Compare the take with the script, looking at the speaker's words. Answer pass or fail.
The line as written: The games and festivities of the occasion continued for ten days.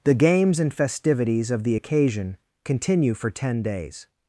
fail